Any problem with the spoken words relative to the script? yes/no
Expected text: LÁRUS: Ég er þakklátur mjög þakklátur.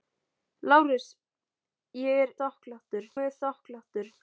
no